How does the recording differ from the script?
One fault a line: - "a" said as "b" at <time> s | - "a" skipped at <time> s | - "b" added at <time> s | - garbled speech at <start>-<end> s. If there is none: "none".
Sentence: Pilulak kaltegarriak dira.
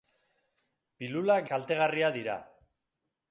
none